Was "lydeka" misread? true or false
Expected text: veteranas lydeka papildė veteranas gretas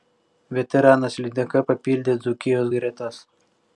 false